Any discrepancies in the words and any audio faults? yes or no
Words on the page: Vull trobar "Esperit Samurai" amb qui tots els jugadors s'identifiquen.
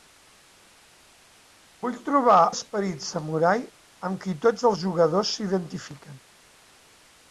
no